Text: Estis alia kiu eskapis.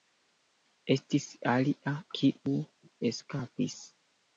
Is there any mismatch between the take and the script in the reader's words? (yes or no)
no